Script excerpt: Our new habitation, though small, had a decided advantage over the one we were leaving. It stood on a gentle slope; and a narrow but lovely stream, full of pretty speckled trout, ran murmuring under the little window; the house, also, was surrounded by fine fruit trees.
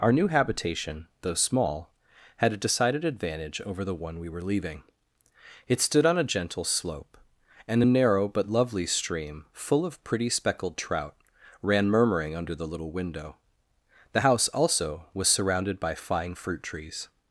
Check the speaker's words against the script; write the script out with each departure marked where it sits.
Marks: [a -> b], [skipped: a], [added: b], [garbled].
Our new habitation, though small, had a decided advantage over the one we were leaving. It stood on a gentle slope; and a narrow but lovely stream, full of pretty speckled trout, ran murmuring under the little window; the house, also, was surrounded by fine fruit trees.